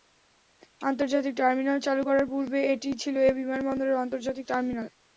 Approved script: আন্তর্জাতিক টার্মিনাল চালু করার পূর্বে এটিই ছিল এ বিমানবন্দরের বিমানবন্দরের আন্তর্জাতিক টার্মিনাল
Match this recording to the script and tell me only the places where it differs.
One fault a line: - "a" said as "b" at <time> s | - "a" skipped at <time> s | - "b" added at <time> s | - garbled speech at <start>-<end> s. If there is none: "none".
- "বিমানবন্দরের" skipped at 4.0 s